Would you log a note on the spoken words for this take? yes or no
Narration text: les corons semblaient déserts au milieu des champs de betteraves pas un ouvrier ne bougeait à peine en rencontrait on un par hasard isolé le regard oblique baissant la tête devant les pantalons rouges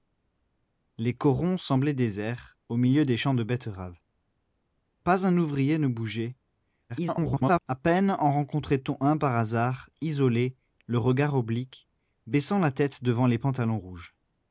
yes